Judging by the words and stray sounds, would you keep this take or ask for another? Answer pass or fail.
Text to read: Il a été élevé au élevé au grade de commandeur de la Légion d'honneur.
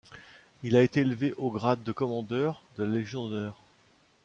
fail